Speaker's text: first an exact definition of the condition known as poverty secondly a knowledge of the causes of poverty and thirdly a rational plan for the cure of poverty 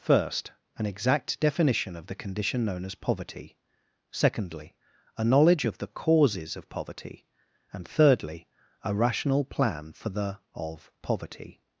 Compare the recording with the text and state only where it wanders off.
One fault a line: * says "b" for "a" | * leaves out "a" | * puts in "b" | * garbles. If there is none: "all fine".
* leaves out "cure"